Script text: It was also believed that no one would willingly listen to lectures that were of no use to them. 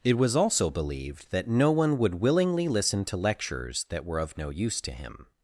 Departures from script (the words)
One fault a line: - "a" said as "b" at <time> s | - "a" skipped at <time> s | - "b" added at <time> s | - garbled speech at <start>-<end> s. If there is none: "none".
- "them" said as "him" at 4.9 s